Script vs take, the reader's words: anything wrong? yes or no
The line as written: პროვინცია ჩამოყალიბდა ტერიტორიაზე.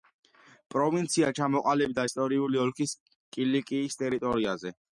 yes